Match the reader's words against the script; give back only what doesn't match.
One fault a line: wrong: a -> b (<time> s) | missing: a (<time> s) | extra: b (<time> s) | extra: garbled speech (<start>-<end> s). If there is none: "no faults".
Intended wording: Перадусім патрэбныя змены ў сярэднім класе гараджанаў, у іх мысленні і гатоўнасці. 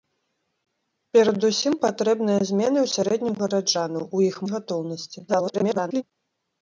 missing: класе (3.4 s)
missing: мысленні (4.3 s)
extra: garbled speech (5.3-6.0 s)